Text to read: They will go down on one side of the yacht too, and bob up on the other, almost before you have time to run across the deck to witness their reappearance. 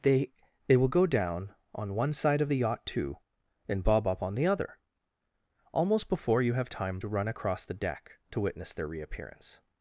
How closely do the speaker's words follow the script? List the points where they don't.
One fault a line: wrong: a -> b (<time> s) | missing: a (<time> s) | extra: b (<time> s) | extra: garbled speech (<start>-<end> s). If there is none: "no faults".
extra: they (0.7 s)